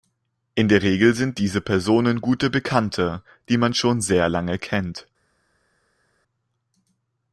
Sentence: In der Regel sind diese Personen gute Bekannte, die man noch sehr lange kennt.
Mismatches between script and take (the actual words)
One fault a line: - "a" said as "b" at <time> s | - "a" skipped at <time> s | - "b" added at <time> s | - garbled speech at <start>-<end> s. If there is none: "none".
- "noch" said as "schon" at 3.7 s